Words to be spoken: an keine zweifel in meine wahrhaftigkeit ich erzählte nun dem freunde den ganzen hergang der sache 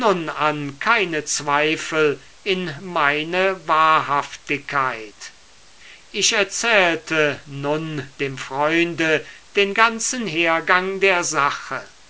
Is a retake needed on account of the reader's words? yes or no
no